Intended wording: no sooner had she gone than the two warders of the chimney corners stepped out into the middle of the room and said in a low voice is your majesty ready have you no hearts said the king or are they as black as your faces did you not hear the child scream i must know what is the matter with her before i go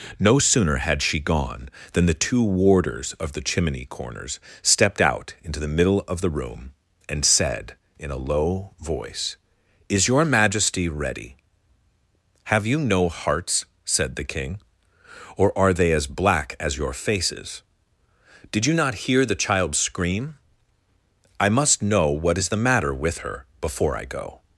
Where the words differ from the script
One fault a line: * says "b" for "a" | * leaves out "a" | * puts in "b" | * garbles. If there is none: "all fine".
all fine